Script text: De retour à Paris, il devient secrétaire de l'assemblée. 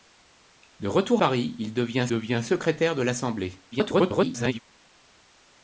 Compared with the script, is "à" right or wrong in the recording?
wrong